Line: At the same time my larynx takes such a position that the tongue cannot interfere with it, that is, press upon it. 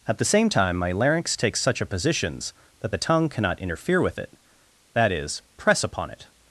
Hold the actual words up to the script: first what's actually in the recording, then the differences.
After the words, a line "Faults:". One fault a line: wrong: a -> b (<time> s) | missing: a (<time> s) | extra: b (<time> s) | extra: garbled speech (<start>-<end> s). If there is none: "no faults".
At the same time my larynx takes such a positions that the tongue cannot interfere with it, that is, press upon it.
Faults:
wrong: position -> positions (1.9 s)